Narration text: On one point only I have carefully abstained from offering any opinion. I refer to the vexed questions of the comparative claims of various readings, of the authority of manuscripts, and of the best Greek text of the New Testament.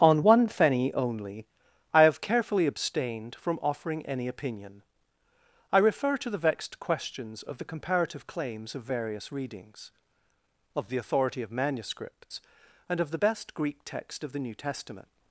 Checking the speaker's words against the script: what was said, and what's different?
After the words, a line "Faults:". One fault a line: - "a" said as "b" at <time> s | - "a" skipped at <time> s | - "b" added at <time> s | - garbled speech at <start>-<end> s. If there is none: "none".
On one fenny only I have carefully abstained from offering any opinion. I refer to the vexed questions of the comparative claims of various readings, of the authority of manuscripts, and of the best Greek text of the New Testament.
Faults:
- "point" said as "fenny" at 0.5 s